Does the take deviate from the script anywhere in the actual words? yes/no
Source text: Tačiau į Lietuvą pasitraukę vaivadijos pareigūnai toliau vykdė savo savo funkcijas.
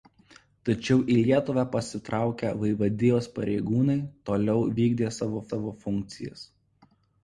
no